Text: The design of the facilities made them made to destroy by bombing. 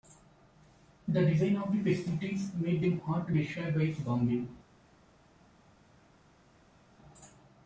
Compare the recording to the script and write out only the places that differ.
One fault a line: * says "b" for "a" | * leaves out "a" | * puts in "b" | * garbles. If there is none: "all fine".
* says "hard" for "made"